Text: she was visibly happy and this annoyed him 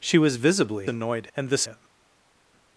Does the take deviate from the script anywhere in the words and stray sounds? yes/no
yes